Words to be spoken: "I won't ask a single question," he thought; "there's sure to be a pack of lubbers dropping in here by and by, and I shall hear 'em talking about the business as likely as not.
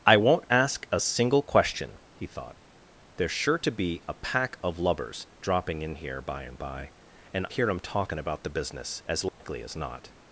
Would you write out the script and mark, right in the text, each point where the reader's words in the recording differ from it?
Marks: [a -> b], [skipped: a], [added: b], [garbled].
"I won't ask a single question," he thought; "there's sure to be a pack of lubbers dropping in here by and by, and [skipped: I shall] hear 'em talking about the business as likely as not.